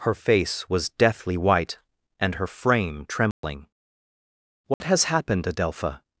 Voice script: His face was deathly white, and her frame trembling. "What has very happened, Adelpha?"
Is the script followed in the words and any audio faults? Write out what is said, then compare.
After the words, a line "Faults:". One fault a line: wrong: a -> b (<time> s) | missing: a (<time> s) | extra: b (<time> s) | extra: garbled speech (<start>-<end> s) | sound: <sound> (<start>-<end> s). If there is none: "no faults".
Her face was deathly white, and her frame trembling. "What has happened, Adelpha?"
Faults:
wrong: His -> Her (0.0 s)
sound: dropout (3.3-3.4 s)
sound: dropout (4.7-4.8 s)
missing: very (5.1 s)